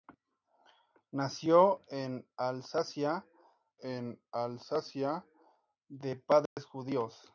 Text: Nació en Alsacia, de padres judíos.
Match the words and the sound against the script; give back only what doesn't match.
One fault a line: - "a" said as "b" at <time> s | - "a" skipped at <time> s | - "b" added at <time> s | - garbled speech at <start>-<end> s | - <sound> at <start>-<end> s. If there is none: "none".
- "en Alsacia" added at 3.8 s
- dropout at 6.5-6.6 s